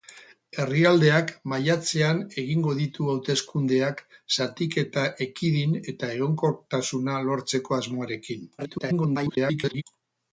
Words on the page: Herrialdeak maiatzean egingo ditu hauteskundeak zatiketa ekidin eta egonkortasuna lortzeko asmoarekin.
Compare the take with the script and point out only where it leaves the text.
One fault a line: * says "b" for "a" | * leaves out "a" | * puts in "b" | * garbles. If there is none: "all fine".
* garbles